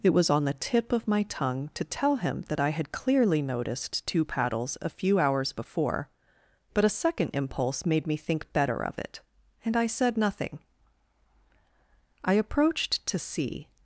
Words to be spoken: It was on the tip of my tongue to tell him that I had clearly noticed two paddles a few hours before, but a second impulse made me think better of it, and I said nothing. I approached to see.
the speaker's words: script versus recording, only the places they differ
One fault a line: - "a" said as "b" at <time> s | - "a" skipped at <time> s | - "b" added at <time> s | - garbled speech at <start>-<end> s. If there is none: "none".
none